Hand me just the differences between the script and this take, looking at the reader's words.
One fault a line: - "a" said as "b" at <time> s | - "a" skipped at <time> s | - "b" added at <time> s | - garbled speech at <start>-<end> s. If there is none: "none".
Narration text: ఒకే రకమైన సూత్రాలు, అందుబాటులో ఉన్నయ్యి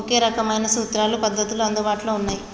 - "పద్ధతులు" added at 1.2 s